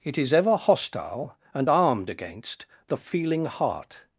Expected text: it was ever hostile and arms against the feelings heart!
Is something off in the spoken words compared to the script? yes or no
yes